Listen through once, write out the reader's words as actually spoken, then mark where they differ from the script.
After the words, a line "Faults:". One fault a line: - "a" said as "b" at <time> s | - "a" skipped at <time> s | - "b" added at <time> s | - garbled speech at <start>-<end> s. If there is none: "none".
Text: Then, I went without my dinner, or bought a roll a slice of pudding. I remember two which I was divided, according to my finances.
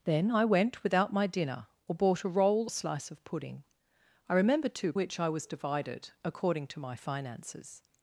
Then, I went without my dinner, or bought a roll a slice of pudding. I remember two which I was divided, according to my finances.
Faults:
none